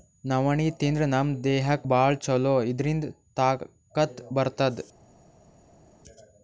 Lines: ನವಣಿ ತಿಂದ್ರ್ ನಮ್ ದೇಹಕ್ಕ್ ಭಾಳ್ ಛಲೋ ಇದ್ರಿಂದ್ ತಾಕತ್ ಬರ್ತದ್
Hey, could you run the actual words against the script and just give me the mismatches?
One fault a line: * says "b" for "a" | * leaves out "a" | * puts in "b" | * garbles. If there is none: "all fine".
all fine